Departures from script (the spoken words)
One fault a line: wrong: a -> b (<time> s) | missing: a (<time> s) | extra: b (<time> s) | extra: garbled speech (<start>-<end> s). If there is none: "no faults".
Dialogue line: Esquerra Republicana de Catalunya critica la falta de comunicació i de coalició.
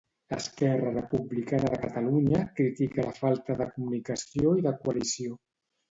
no faults